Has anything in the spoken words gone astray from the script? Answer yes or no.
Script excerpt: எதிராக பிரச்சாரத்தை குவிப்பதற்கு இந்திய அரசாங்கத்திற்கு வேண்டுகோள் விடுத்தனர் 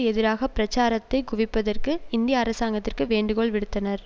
no